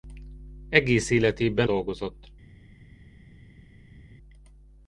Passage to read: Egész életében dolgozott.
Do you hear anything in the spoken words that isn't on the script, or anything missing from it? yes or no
no